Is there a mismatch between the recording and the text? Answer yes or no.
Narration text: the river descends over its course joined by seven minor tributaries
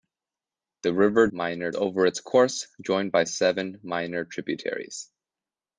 yes